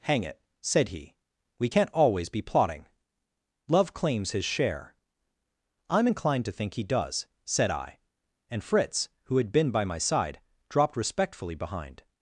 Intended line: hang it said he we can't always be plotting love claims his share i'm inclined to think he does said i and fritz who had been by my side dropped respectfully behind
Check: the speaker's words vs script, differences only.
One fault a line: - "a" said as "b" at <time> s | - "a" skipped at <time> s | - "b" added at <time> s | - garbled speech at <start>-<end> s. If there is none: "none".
none